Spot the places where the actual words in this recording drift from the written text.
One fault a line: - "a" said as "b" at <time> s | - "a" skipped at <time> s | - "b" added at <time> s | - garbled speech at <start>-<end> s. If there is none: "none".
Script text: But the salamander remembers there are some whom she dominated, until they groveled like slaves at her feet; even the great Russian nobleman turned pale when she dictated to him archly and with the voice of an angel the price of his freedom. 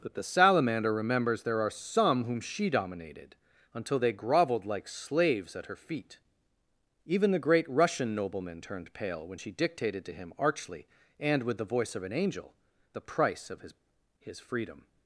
- "his" added at 14.2 s